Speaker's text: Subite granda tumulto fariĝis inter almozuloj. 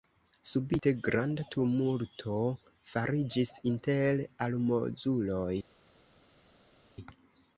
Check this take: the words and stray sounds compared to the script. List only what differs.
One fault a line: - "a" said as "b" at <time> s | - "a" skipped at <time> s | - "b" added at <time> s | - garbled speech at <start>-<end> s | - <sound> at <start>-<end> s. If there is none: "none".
none